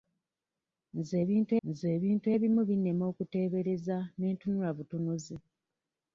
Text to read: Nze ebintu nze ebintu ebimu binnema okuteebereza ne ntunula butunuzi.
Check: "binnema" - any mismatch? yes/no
no